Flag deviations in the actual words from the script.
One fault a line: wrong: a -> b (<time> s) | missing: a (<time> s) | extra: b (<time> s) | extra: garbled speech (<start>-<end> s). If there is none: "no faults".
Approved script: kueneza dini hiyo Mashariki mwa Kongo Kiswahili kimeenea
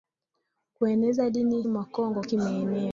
missing: hiyo Mashariki (1.6 s)
missing: Kiswahili (2.2 s)